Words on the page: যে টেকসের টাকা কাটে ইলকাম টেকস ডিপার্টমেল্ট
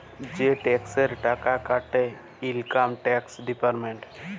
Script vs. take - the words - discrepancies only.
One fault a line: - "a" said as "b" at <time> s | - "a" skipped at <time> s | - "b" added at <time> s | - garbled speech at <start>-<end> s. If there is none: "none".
none